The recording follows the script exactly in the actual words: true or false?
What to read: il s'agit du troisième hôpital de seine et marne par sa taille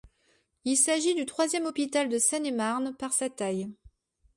true